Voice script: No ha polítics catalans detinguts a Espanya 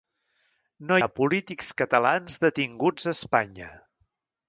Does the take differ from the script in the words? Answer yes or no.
no